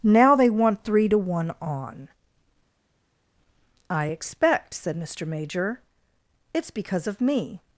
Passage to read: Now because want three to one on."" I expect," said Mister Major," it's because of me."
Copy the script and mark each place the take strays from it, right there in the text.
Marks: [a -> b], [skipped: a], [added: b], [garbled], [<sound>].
Now [because -> they] want three to one on."" I expect," said Mister Major," it's because of me."